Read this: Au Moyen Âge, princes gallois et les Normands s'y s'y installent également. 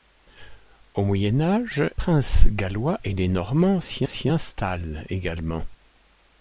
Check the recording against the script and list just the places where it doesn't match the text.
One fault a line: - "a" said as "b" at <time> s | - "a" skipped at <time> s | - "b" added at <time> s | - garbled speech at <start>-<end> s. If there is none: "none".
none